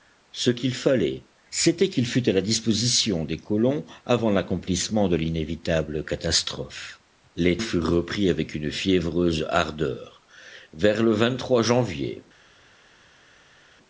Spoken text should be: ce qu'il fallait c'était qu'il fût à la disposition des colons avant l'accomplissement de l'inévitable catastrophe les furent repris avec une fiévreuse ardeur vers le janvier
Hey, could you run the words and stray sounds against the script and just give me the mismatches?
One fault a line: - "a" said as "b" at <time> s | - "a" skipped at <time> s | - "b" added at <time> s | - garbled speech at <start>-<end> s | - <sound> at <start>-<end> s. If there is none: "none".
none